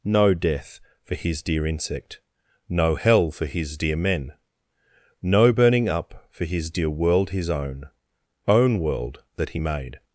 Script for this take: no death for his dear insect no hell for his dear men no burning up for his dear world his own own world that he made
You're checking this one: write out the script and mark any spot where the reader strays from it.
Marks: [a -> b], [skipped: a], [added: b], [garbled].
no death for his dear insect no hell for his dear men no burning up for his dear world his own own world that he made